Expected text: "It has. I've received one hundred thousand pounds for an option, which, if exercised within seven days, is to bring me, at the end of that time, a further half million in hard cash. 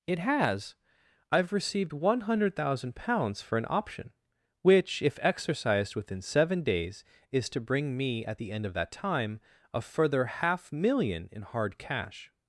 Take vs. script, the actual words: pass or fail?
pass